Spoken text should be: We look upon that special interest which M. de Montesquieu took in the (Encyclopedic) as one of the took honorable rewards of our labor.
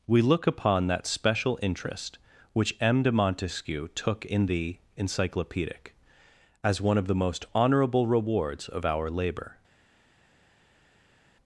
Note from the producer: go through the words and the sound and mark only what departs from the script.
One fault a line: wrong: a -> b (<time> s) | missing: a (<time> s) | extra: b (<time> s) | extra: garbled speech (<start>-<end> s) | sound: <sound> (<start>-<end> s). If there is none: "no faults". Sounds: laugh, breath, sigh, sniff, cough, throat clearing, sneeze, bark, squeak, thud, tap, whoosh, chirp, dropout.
wrong: took -> most (7.2 s)